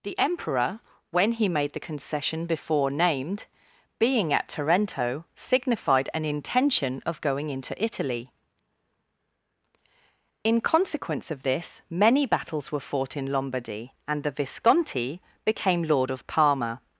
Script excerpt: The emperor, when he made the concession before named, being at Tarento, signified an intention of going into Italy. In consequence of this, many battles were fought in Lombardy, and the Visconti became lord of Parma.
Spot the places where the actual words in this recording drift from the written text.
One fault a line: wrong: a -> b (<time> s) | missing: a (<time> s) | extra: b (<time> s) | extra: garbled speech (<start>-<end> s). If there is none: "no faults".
no faults